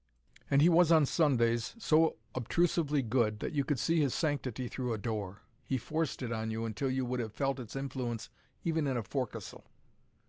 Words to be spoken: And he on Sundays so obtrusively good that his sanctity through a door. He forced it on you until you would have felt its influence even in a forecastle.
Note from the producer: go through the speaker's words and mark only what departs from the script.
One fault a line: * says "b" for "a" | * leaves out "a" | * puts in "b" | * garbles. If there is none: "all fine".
* puts in "was"
* puts in "you could see"